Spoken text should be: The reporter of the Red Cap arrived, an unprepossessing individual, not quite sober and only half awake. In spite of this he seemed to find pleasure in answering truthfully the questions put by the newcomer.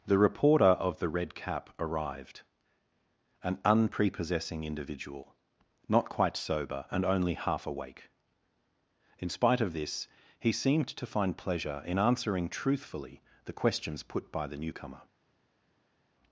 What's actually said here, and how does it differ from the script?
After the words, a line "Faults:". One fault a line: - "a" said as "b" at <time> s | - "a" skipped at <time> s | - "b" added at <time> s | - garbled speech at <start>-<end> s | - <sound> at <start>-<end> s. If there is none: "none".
The reporter of the Red Cap arrived, an unprepossessing individual, not quite sober and only half awake. In spite of this he seemed to find pleasure in answering truthfully the questions put by the newcomer.
Faults:
none